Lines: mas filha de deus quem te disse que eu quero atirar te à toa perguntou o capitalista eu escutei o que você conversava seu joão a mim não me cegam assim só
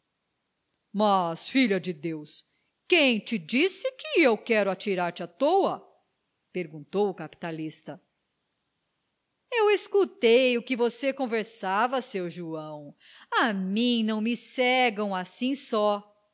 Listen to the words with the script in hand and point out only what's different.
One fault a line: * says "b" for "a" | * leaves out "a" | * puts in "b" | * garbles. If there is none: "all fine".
all fine